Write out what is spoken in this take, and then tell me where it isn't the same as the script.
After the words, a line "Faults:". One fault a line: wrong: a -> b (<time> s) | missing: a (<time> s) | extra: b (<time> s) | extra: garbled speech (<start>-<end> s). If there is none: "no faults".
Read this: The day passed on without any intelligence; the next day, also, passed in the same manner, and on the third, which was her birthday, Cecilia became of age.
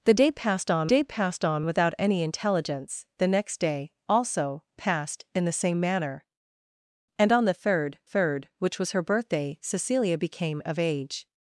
The day passed on day passed on without any intelligence; the next day, also, passed in the same manner, and on the third third, which was her birthday, Cecilia became of age.
Faults:
extra: day passed on (0.9 s)
extra: third (8.0 s)